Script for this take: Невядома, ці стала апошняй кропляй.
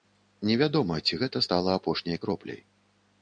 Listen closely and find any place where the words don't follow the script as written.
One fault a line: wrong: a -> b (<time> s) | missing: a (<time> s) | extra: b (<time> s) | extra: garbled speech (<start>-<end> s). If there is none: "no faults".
extra: гэта (1.2 s)